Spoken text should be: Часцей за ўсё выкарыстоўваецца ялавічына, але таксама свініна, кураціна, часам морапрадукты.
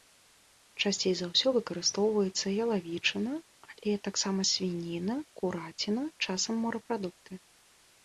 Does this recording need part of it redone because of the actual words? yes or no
no